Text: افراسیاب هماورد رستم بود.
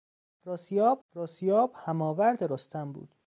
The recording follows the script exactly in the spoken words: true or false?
false